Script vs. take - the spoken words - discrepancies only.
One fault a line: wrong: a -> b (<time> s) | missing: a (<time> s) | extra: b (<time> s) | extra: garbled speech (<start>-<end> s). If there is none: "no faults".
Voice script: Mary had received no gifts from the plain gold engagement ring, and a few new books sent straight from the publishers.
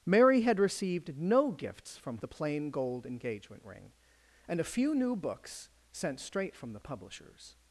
no faults